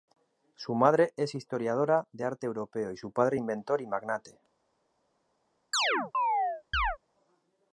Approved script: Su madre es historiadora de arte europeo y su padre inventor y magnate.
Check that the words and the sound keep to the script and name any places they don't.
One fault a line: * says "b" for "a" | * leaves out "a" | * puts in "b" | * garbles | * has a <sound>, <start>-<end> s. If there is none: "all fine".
* has a chirp, 5.7-7.0 s